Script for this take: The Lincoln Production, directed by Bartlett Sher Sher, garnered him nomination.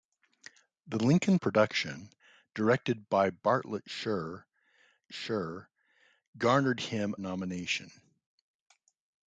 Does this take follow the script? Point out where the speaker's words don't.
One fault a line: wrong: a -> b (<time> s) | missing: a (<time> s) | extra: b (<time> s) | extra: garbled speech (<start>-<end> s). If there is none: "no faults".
no faults